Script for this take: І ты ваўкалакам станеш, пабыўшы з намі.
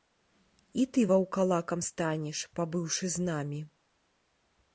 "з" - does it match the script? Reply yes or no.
yes